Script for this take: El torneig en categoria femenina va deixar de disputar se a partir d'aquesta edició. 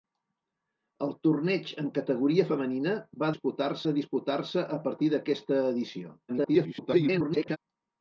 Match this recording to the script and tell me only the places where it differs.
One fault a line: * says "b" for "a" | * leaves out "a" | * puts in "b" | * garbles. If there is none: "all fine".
* says "disputar" for "deixar"
* garbles